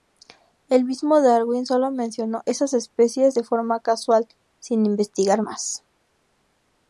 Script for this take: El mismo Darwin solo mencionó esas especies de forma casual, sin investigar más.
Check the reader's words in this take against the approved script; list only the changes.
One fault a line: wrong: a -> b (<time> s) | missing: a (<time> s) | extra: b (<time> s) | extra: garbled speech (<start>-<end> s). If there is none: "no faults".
no faults